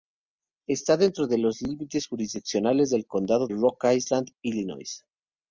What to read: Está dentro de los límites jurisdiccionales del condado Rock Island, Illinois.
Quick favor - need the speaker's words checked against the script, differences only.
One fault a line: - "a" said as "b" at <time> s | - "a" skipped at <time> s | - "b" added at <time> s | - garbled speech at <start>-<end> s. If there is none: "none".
none